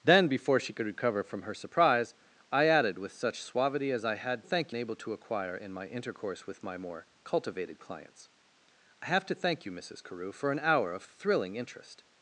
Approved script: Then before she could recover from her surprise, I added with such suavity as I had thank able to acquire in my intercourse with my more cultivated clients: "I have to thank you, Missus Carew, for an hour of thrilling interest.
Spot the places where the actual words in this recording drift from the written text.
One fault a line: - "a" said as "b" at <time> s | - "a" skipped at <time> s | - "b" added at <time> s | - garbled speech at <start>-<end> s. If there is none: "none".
none